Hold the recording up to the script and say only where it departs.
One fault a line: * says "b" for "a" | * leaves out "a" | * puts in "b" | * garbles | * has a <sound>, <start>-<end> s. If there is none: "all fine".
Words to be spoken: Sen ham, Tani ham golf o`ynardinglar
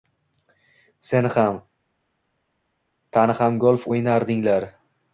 all fine